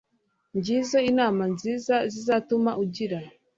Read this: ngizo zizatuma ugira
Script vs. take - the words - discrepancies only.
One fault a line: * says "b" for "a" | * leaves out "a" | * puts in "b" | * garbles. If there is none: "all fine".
* puts in "inama nziza"